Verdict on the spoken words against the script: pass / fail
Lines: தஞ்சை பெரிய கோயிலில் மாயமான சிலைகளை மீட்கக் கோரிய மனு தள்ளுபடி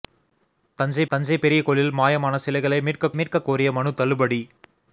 fail